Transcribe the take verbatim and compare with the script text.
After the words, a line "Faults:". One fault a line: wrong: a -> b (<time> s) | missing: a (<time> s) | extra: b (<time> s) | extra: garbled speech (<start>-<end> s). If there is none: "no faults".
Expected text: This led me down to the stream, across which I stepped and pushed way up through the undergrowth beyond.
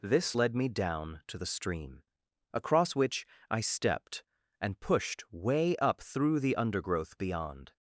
This led me down to the stream, across which I stepped and pushed way up through the undergrowth beyond.
Faults:
no faults